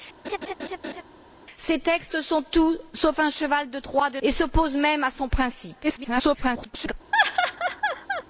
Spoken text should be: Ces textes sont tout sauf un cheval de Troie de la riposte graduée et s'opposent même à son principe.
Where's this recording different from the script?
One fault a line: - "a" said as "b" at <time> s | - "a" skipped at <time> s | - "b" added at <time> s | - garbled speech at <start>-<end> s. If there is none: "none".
- "la riposte graduée" skipped at 4.2 s
- garbled speech at 5.8-6.9 s